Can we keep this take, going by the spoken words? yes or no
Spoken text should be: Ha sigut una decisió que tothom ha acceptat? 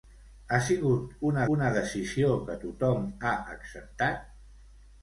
no